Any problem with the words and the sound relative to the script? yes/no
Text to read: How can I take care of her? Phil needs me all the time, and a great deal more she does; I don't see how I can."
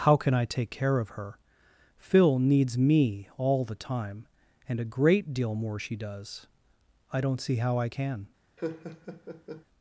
yes